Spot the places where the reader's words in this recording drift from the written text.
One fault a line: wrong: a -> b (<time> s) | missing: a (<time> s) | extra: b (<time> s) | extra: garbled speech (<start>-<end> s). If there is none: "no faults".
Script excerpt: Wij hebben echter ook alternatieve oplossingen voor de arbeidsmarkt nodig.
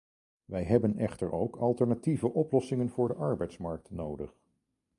no faults